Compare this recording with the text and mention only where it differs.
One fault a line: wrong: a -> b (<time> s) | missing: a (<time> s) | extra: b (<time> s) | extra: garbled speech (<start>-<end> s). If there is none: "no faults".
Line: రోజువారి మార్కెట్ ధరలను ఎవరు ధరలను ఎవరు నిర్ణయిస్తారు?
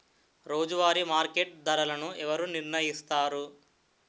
missing: ధరలను ఎవరు (2.5 s)